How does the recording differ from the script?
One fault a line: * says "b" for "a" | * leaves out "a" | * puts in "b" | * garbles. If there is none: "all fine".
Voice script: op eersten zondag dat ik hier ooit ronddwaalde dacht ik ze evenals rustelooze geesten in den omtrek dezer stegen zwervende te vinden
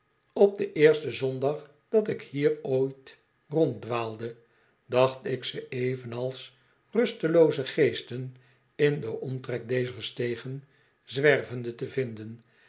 * puts in "den"